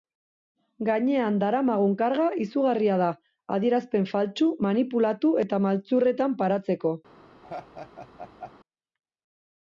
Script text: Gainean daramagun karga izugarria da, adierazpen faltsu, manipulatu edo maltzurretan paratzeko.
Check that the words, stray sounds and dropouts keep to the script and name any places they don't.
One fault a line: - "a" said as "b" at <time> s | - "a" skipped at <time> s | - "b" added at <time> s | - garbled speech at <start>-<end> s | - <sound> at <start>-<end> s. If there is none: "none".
- "edo" said as "eta" at 5.5 s
- laugh at 7.4-8.5 s